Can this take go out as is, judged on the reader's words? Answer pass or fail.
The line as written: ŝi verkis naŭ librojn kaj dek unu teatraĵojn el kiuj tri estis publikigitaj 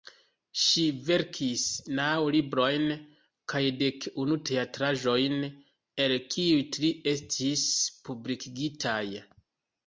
pass